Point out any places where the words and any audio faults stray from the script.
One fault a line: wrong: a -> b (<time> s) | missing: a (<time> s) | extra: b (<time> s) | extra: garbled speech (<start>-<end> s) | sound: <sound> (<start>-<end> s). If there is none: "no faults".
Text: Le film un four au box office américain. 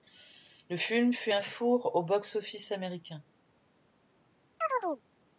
extra: fut (1.1 s)
sound: chirp (4.6-5.0 s)